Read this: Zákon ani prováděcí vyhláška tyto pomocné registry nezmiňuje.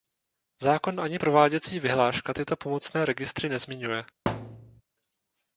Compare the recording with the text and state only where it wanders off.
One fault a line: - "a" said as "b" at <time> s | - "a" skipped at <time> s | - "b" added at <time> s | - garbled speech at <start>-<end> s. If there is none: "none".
none